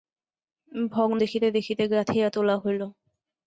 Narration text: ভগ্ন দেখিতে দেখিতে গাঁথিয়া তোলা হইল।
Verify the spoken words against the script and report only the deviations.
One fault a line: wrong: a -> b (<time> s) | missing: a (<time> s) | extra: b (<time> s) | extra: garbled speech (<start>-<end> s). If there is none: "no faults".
no faults